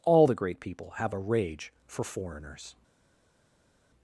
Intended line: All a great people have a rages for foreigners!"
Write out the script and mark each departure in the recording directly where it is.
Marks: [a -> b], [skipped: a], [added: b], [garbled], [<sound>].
All [a -> the] great people have a [rages -> rage] for foreigners!"